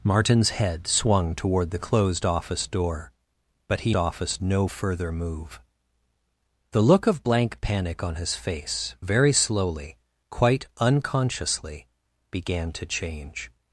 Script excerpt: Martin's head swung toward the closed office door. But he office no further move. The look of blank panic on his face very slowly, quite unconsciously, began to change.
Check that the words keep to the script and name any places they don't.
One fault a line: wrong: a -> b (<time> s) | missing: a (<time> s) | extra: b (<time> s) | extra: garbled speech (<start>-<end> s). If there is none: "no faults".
no faults